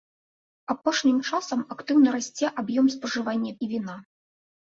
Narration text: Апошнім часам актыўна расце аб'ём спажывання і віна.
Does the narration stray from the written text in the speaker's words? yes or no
no